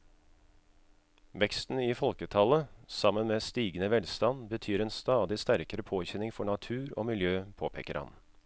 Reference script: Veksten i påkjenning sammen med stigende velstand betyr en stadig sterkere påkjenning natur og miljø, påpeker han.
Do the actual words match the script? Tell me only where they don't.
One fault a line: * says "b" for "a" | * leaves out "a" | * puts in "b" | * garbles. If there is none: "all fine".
* says "folketallet" for "påkjenning"
* puts in "for"